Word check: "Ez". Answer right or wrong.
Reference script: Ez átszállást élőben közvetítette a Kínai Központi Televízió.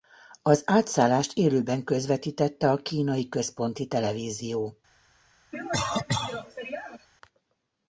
wrong